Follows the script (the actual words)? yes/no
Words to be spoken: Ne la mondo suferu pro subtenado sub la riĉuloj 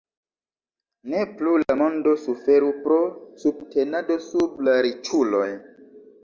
no